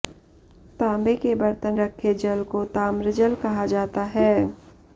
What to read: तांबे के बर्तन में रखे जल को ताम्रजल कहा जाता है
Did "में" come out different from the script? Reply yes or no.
yes